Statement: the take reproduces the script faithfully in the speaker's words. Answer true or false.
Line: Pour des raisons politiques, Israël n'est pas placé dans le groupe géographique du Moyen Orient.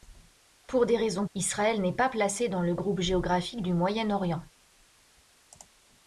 false